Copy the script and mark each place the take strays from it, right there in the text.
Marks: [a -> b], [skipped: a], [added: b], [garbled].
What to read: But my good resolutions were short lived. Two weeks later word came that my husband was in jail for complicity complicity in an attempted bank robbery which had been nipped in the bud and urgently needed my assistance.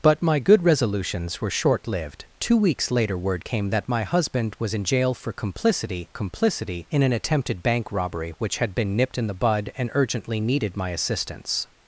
But my good resolutions were short lived. Two weeks later word came that my husband was in jail for complicity complicity in an attempted bank robbery which had been nipped in the bud and urgently needed my assistance.